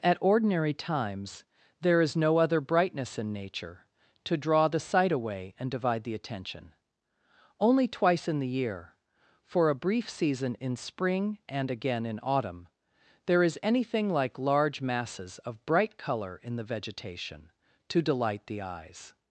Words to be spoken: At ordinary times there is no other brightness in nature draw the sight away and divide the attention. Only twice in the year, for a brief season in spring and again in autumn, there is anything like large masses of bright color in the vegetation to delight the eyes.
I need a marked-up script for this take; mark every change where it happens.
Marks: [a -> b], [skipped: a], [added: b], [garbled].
At ordinary times there is no other brightness in nature [added: to] draw the sight away and divide the attention. Only twice in the year, for a brief season in spring and again in autumn, there is anything like large masses of bright color in the vegetation to delight the eyes.